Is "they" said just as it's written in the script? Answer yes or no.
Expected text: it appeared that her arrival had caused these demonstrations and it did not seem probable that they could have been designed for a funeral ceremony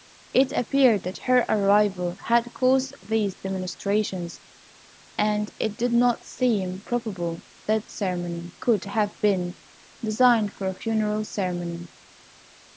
no